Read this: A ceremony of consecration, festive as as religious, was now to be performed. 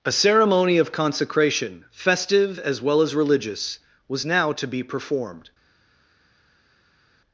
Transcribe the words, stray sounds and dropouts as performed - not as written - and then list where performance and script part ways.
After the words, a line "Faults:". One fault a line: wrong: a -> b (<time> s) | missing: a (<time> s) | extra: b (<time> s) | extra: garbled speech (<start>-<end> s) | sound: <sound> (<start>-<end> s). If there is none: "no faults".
A ceremony of consecration, festive as well as religious, was now to be performed.
Faults:
extra: well (2.8 s)